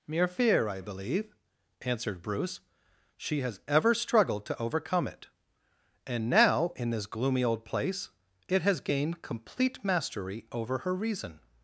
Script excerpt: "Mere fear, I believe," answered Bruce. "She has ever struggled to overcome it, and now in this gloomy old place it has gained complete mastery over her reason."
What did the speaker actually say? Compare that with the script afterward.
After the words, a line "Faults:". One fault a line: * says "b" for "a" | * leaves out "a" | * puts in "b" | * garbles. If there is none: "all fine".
"Mere fear, I believe," answered Bruce. "She has ever struggled to overcome it, and now in this gloomy old place it has gained complete mastery over her reason."
Faults:
all fine